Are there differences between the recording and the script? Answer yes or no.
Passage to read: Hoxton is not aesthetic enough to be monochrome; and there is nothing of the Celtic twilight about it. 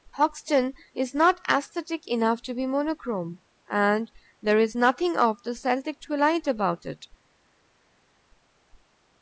no